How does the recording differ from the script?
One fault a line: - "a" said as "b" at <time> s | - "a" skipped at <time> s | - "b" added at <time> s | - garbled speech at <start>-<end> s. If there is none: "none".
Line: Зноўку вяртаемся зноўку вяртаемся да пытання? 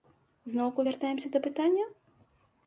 - "зноўку вяртаемся" skipped at 1.3 s